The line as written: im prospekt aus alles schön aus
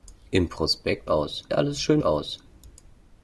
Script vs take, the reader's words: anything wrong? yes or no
no